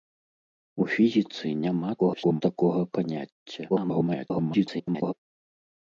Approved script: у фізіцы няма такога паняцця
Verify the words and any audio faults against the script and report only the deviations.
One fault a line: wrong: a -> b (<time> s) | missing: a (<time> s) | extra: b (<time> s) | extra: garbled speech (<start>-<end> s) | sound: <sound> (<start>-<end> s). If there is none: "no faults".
extra: garbled speech (2.0-2.4 s)
extra: garbled speech (3.7-5.1 s)